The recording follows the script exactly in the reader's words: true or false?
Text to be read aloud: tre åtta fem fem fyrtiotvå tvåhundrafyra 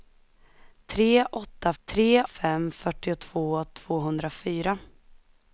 false